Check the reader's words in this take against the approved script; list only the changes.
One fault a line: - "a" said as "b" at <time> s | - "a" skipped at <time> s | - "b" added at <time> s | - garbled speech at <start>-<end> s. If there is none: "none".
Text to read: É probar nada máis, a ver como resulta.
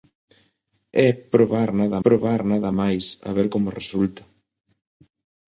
- "probar nada" added at 2.0 s